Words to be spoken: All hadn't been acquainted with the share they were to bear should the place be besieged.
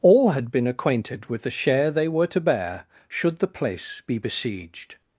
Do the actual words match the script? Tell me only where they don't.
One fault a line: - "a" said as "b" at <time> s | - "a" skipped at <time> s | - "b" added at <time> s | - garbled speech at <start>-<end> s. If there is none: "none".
- "hadn't" said as "had" at 0.3 s